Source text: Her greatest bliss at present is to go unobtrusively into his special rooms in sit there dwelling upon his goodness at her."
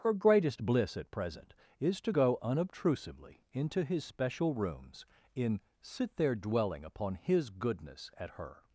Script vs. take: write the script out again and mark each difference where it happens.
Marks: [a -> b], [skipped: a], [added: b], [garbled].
Her greatest bliss at present is to go unobtrusively into his special rooms in sit there dwelling upon his goodness at her."